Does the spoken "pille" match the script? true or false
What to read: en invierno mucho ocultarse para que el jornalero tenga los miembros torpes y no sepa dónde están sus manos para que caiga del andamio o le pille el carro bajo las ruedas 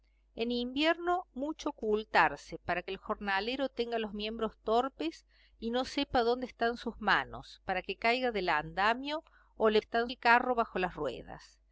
false